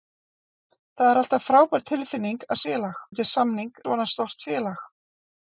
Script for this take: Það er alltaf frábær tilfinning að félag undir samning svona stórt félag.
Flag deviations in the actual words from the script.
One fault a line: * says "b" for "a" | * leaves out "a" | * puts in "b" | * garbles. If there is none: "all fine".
all fine